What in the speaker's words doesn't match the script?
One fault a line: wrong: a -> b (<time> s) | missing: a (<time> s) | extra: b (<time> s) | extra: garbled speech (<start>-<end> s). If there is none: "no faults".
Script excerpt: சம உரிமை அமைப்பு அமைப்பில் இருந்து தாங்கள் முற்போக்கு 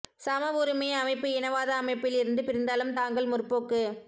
extra: இனவாத (1.3 s)
extra: பிரிந்தாலும் (2.4 s)